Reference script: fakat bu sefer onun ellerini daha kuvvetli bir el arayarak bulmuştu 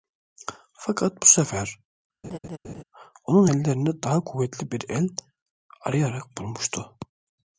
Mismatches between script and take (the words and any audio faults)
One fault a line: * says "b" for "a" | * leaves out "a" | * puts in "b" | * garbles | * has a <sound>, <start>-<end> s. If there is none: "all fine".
* has a laugh, 2.2-2.8 s